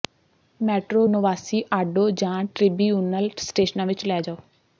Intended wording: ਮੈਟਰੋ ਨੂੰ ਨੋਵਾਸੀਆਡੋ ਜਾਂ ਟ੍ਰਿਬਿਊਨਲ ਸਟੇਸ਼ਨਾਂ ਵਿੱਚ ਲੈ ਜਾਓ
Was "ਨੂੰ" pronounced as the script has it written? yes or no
no